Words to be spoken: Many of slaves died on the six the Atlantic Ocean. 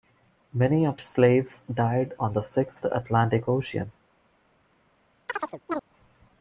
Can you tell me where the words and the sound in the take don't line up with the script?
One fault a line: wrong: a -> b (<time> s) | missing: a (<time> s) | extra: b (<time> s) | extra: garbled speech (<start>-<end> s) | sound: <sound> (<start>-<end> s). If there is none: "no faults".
sound: chirp (5.3-5.8 s)